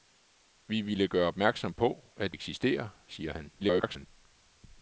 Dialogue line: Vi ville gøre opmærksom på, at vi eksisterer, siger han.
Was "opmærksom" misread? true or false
false